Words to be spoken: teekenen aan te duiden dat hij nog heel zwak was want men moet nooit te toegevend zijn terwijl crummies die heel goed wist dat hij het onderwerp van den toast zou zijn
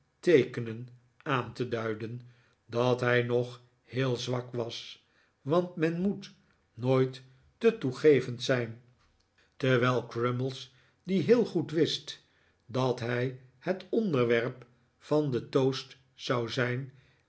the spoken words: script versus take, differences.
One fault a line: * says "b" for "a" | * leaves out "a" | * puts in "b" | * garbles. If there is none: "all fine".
all fine